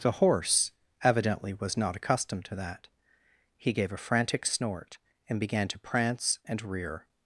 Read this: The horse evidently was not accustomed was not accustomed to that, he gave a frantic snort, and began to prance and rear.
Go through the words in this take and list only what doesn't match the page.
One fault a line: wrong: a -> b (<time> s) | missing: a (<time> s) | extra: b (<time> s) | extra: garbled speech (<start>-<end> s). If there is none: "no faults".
missing: was not accustomed (2.5 s)